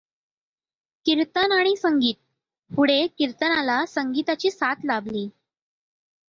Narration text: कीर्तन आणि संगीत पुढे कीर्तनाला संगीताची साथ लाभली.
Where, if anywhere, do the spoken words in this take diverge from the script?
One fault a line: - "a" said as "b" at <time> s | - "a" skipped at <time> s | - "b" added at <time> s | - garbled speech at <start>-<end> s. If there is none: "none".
none